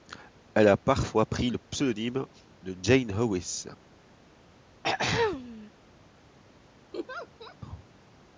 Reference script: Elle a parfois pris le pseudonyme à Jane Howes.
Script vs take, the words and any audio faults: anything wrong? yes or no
yes